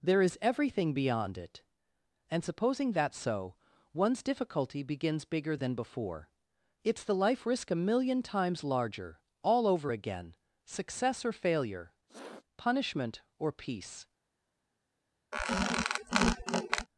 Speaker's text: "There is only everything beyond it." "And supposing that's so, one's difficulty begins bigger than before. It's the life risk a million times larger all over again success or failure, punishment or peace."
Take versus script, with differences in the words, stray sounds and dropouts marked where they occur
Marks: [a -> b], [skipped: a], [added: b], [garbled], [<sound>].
"There is [skipped: only] everything beyond it." "And supposing that's so, one's difficulty begins bigger than before. It's the life risk a million times larger all over again success or failure, [sniff] punishment or peace." [squeak]